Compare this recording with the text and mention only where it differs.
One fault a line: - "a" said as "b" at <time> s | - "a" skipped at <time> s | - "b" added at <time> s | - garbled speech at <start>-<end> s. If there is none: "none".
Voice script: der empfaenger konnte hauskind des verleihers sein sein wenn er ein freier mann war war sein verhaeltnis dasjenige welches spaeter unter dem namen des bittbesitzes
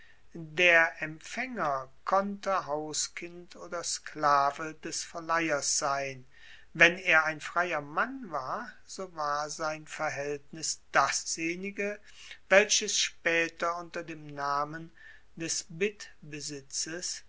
- "oder sklave" added at 3.5 s
- "sein" skipped at 6.3 s
- "so" added at 8.9 s